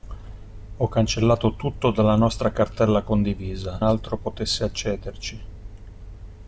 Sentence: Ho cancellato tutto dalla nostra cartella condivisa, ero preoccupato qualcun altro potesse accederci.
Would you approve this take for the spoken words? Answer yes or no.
no